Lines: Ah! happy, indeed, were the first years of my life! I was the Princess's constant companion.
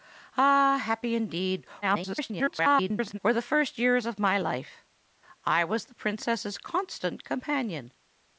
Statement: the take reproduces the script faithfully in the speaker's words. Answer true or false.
false